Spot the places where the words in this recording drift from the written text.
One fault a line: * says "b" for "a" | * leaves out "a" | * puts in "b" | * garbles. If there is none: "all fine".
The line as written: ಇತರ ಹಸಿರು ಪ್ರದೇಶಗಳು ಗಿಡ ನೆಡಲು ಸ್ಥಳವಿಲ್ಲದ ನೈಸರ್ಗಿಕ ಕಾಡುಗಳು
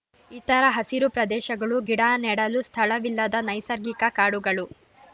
all fine